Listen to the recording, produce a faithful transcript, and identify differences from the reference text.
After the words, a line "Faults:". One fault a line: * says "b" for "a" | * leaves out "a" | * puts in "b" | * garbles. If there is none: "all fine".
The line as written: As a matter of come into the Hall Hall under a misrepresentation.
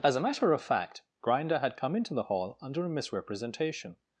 As a matter of fact, Grinder had come into the Hall under a misrepresentation.
Faults:
* puts in "fact Grinder had"
* leaves out "Hall"